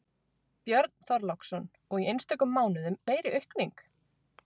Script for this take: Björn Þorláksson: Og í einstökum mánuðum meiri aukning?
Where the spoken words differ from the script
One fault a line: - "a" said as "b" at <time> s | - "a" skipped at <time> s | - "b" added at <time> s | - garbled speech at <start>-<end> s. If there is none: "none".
none